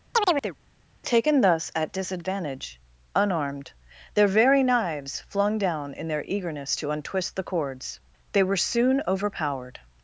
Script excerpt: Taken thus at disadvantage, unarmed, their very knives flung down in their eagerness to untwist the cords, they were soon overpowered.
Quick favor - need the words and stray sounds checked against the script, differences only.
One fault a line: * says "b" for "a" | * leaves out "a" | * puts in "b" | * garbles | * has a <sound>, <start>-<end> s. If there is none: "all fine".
* has a chirp, 0.1-0.6 s